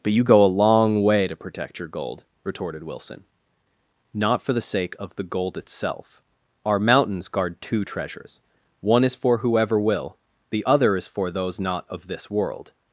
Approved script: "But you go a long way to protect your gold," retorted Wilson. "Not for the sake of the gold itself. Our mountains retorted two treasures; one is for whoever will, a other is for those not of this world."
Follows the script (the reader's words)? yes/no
no